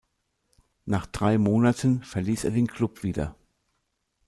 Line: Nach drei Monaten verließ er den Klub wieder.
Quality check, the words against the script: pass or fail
pass